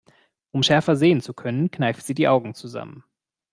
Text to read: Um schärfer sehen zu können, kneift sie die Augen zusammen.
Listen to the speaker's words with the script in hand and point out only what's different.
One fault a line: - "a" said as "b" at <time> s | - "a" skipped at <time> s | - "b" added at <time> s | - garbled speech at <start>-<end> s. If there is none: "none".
none